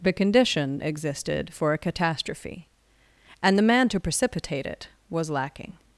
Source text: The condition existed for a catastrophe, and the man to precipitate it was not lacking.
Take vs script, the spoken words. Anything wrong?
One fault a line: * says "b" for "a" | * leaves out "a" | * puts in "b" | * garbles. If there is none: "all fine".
* leaves out "not"